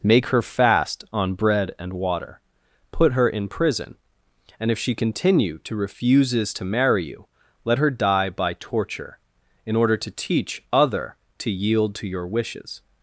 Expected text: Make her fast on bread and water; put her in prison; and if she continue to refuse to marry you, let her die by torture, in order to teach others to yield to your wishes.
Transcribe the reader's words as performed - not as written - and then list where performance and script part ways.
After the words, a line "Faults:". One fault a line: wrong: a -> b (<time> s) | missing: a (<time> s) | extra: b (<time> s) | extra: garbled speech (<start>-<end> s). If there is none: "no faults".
Make her fast on bread and water; put her in prison; and if she continue to refuses to marry you, let her die by torture, in order to teach other to yield to your wishes.
Faults:
wrong: refuse -> refuses (5.8 s)
wrong: others -> other (10.7 s)